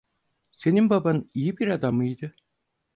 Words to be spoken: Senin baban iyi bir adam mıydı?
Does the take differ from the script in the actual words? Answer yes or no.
no